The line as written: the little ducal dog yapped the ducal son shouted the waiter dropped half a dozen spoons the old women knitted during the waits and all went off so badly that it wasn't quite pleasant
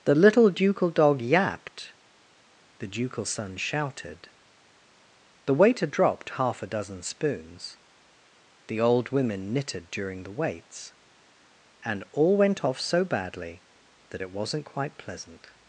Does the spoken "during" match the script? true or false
true